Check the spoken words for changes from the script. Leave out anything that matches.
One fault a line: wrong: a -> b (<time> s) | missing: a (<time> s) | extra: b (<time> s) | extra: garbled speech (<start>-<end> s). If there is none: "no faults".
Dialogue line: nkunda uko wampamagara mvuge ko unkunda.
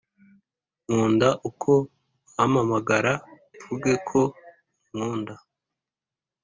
no faults